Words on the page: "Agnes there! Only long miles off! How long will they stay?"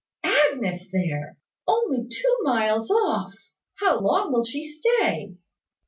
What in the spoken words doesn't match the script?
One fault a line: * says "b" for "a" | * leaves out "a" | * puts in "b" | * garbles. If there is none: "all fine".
* says "two" for "long"
* says "she" for "they"